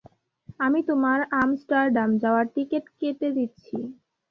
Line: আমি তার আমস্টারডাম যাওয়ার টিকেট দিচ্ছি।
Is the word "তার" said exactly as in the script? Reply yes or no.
no